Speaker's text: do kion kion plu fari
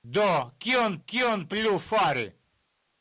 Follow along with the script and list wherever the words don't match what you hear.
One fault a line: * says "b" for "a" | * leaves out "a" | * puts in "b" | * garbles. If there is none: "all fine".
all fine